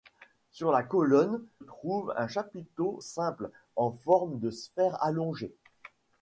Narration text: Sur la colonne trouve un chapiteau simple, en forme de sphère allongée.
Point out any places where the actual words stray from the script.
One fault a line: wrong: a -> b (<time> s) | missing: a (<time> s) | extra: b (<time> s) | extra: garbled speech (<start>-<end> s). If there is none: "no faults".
no faults